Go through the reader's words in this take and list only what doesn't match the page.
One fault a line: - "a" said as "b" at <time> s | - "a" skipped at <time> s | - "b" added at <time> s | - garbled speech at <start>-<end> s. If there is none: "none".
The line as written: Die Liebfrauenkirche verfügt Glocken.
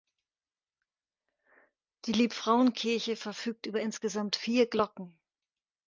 - "über insgesamt vier" added at 3.7 s